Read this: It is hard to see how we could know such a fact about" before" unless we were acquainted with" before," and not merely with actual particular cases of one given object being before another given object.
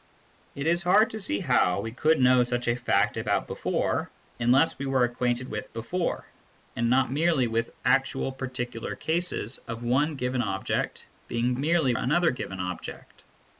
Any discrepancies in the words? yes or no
yes